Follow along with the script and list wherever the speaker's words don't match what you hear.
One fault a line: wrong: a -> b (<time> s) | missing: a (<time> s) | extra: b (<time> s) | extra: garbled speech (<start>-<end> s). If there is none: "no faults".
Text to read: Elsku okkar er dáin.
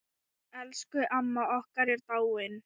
extra: amma (1.2 s)